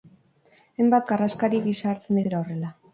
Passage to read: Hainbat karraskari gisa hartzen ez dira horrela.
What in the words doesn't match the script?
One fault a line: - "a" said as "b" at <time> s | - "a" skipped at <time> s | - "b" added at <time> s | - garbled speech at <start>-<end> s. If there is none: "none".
none